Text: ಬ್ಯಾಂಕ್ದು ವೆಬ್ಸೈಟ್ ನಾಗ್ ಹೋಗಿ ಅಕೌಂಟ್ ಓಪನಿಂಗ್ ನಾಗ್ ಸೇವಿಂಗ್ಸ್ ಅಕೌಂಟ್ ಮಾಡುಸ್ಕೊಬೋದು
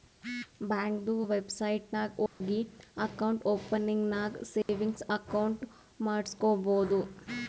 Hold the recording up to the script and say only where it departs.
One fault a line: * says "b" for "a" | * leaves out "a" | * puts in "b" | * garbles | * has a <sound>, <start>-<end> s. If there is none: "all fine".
* has a dropout, 2.3-2.4 s
* has a dropout, 4.6-4.7 s